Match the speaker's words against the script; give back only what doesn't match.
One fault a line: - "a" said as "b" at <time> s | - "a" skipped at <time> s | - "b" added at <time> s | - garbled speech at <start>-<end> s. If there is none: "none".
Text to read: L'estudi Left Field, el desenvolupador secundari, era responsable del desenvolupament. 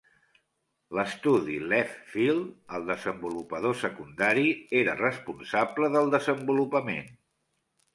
none